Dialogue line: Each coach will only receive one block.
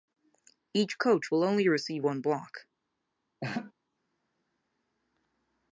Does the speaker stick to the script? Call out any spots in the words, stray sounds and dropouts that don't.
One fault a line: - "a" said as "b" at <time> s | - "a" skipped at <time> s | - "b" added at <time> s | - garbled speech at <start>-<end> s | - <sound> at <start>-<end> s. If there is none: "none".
- laugh at 3.4-3.7 s